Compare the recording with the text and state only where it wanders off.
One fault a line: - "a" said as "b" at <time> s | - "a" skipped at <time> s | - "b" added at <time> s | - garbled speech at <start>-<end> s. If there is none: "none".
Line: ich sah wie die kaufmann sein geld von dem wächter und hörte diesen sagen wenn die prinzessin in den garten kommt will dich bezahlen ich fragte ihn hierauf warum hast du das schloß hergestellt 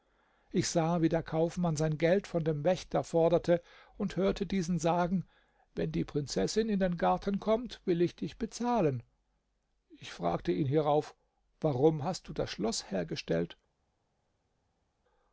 - "die" said as "der" at 1.1 s
- "forderte" added at 3.0 s
- "ich" added at 8.0 s